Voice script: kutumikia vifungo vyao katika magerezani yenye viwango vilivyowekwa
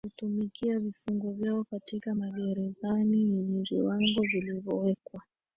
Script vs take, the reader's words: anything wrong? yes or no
no